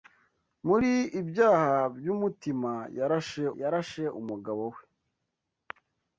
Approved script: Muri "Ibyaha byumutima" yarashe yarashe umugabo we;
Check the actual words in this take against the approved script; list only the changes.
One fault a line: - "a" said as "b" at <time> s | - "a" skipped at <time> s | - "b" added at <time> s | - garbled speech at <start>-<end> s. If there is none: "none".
none